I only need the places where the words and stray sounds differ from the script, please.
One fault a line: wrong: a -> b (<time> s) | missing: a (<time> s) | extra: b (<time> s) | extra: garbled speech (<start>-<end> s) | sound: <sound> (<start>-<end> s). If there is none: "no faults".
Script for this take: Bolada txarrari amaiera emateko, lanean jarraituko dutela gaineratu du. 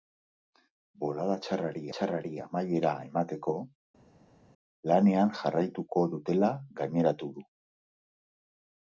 extra: txarrari (2.0 s)